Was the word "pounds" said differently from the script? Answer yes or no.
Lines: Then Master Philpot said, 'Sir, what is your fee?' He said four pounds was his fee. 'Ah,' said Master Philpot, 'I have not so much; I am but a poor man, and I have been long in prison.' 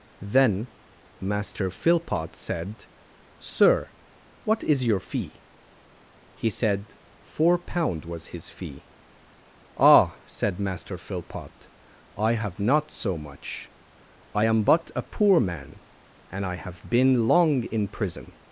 yes